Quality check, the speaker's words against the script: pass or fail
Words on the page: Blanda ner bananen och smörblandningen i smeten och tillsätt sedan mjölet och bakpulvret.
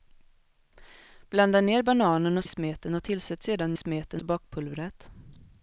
fail